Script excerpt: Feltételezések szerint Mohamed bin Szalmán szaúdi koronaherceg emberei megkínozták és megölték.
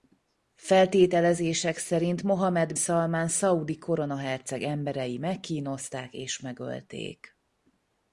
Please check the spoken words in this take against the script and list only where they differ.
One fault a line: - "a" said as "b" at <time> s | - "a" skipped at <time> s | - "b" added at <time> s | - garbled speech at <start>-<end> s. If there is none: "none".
- "bin" skipped at 2.7 s